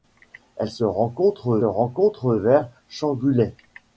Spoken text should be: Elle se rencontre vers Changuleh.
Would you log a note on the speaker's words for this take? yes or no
yes